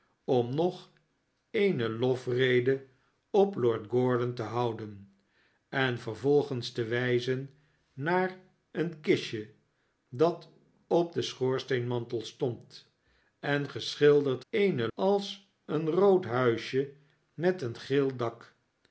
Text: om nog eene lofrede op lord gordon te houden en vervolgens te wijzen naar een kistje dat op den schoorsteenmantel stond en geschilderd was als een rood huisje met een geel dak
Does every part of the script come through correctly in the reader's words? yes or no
no